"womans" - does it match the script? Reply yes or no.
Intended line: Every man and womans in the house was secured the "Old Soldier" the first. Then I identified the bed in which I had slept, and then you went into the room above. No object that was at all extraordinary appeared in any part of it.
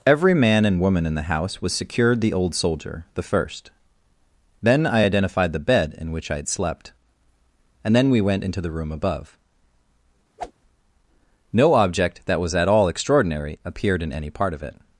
no